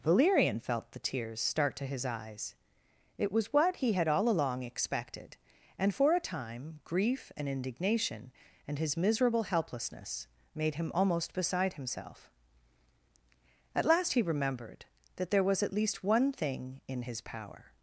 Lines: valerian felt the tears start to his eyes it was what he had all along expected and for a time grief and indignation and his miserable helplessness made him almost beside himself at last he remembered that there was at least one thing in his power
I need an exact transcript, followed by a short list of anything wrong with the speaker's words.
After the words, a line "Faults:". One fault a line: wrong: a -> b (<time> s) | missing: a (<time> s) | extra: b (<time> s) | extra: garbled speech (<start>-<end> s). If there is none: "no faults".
valerian felt the tears start to his eyes it was what he had all along expected and for a time grief and indignation and his miserable helplessness made him almost beside himself at last he remembered that there was at least one thing in his power
Faults:
no faults